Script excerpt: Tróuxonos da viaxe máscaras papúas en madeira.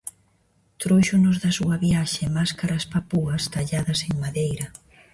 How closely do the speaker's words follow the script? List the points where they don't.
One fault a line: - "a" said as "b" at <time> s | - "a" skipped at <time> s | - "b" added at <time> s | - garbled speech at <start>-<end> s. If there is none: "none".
- "súa" added at 1.6 s
- "talladas" added at 3.5 s